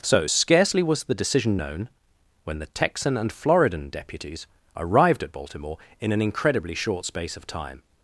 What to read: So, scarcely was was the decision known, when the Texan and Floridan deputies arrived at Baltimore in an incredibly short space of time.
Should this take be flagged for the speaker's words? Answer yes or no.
yes